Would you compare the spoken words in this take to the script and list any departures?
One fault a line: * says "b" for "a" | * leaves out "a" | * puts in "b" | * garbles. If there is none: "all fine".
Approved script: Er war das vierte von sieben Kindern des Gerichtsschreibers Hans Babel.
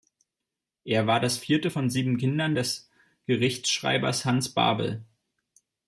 all fine